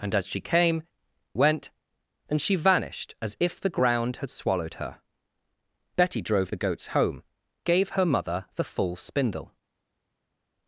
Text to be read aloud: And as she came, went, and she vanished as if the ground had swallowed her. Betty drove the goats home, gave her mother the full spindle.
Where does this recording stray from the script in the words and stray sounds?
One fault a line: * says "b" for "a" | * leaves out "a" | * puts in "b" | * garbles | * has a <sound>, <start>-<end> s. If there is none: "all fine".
all fine